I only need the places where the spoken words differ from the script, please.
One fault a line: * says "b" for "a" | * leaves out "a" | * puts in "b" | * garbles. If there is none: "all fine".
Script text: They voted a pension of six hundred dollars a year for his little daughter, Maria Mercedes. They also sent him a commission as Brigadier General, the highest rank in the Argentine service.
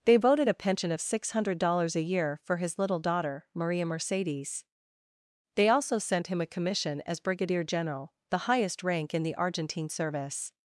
all fine